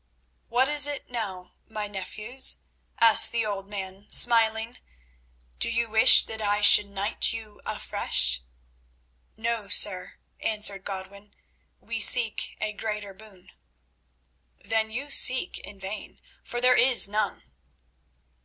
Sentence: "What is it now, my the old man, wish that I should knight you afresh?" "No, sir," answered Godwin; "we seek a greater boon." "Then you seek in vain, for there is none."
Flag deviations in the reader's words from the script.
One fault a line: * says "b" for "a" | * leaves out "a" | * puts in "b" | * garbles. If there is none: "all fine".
* puts in "nephews asked"
* puts in "smiling Do you"